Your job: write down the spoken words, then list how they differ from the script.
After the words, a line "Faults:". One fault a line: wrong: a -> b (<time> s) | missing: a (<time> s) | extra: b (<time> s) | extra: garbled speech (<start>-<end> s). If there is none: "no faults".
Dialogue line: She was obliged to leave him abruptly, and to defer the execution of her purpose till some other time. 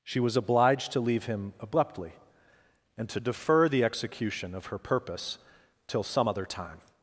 She was obliged to leave him abruptly, and to defer the execution of her purpose till some other time.
Faults:
no faults